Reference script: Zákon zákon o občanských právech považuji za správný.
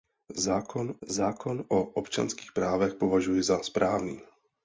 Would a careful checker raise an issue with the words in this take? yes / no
no